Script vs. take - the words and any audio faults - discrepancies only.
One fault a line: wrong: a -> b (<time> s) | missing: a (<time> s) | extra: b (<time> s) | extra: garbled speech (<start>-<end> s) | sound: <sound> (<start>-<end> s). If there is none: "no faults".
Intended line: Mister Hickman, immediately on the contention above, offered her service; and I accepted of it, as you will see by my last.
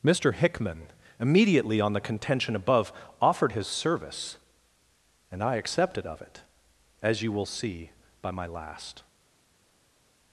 wrong: her -> his (3.5 s)